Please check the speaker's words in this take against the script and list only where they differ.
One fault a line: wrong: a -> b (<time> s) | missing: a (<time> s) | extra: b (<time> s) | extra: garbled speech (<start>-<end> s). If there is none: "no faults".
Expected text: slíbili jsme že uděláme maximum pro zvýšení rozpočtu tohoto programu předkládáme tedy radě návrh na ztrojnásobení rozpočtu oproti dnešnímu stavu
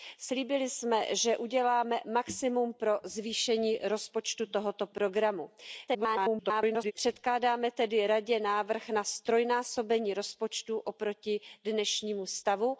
extra: garbled speech (5.9-6.9 s)